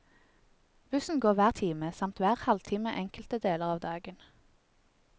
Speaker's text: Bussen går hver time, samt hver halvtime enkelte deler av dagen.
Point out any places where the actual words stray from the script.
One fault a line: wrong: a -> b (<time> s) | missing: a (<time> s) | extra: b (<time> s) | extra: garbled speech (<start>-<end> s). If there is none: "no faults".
no faults